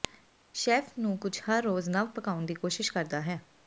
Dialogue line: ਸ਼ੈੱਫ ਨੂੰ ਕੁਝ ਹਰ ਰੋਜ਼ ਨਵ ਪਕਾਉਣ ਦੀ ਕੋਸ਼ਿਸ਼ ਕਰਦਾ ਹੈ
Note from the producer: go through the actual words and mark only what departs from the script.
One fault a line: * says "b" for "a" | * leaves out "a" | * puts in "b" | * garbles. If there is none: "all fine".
all fine